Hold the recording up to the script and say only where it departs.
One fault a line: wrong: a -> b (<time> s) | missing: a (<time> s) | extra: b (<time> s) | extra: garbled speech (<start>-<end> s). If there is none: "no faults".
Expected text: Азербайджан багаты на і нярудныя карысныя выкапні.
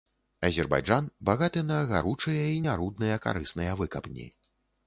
extra: гаручыя (1.9 s)